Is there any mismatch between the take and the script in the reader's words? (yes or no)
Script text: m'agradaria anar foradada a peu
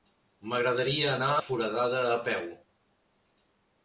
no